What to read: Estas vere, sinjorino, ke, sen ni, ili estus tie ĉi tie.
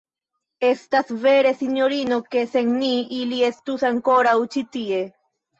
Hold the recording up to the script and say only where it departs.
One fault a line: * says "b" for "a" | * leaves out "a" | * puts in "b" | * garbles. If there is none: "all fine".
* says "ankoraŭ" for "tie"